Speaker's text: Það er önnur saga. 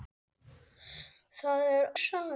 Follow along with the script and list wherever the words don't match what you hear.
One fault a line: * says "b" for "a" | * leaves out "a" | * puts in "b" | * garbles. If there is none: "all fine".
* leaves out "önnur"